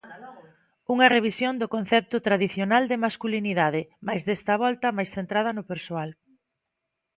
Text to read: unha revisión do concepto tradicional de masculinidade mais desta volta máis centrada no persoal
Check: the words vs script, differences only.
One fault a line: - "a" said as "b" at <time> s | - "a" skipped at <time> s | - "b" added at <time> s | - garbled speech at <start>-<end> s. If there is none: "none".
none